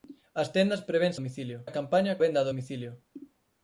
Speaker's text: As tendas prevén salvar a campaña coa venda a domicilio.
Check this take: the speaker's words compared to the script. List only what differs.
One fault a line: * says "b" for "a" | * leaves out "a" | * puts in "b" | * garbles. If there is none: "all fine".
* says "domicilio" for "salvar"
* leaves out "coa"